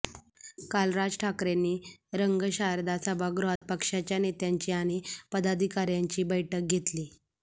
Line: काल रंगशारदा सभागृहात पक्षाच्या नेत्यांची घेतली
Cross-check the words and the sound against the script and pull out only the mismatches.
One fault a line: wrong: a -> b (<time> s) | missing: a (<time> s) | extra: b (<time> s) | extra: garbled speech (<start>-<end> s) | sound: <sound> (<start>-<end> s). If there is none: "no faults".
extra: राज ठाकरेंनी (0.9 s)
sound: dropout (3.6-3.6 s)
extra: आणि पदाधिकाऱ्यांची बैठक (4.7 s)